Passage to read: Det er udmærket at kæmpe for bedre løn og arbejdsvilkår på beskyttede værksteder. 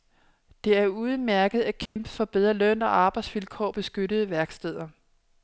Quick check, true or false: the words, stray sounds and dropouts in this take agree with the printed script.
false